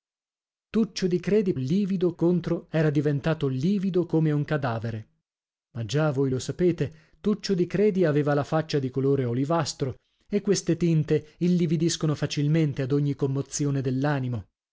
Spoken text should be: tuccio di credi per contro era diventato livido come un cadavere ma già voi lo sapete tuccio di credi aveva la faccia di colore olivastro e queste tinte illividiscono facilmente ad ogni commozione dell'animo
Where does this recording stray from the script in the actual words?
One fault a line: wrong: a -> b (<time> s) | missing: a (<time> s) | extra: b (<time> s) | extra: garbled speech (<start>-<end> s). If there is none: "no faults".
wrong: per -> livido (1.5 s)